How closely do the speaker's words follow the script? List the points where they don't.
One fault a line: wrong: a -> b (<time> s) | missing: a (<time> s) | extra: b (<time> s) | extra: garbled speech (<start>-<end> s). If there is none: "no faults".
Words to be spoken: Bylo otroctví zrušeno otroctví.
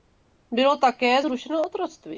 wrong: otroctví -> také (0.8 s)